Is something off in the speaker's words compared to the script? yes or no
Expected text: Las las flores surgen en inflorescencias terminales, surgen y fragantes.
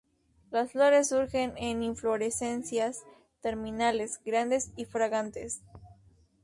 yes